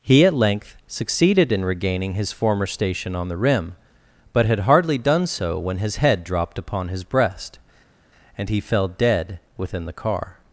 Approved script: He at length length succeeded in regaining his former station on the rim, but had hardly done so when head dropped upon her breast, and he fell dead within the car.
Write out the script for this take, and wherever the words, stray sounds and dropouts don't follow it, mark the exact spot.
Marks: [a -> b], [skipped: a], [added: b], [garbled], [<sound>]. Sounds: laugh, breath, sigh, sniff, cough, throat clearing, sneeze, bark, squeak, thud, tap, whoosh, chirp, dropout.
He at length [skipped: length] succeeded in regaining his former station on the rim, but had hardly done so when [added: his] head dropped upon [her -> his] breast, and he fell dead within the car.